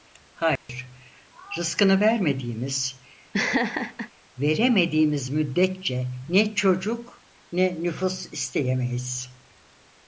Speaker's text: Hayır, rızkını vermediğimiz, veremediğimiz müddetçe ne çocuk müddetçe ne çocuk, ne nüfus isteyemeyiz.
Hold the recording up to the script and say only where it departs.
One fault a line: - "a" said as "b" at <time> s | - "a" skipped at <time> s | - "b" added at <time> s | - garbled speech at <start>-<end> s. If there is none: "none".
- "müddetçe ne çocuk" skipped at 7.2 s